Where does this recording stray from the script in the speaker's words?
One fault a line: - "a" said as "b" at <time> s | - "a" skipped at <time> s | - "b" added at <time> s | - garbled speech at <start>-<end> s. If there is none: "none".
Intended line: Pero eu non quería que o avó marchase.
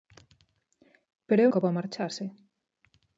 - "non quería" skipped at 1.5 s